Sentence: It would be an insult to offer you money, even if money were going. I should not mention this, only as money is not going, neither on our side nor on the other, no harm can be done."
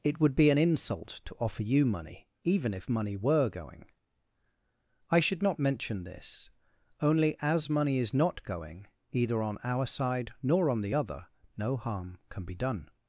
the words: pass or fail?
fail